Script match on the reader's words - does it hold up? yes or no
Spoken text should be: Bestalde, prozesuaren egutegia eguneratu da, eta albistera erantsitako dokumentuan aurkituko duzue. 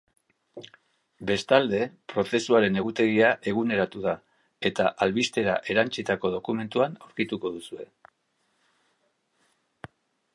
yes